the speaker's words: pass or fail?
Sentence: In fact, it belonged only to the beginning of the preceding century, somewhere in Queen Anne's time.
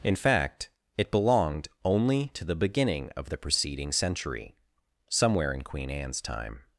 pass